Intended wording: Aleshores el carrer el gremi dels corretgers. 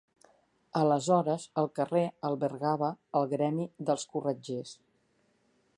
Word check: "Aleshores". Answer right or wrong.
right